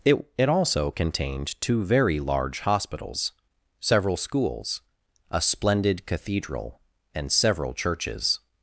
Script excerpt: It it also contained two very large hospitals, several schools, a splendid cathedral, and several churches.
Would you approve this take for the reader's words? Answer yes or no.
yes